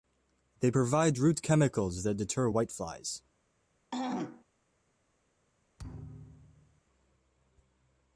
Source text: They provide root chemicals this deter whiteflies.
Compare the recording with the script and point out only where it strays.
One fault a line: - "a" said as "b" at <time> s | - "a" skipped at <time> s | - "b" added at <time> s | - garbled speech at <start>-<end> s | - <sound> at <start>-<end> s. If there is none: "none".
- "this" said as "that" at 2.0 s
- throat clearing at 3.9-4.4 s
- thud at 5.8-6.8 s